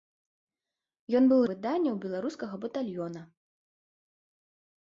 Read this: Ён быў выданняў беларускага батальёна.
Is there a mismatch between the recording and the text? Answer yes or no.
no